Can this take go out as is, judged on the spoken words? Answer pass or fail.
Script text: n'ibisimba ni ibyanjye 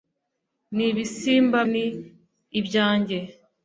pass